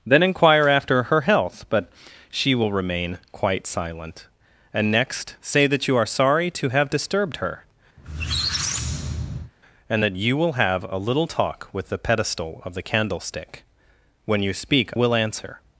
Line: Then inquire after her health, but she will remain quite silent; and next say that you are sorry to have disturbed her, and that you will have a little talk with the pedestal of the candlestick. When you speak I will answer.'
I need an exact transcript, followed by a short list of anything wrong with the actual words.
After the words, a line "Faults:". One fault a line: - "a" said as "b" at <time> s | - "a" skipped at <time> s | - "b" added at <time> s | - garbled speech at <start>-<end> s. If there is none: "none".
Then inquire after her health, but she will remain quite silent; and next say that you are sorry to have disturbed her, and that you will have a little talk with the pedestal of the candlestick. When you speak will answer.'
Faults:
- "I" skipped at 14.9 s